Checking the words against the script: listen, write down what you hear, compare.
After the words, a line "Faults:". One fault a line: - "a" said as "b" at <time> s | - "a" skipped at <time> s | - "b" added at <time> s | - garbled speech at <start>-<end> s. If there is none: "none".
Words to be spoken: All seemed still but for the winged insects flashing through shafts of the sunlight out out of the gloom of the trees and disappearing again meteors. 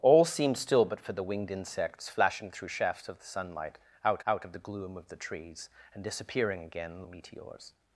All seemed still but for the winged insects flashing through shafts of the sunlight out out of the gloom of the trees and disappearing again meteors.
Faults:
none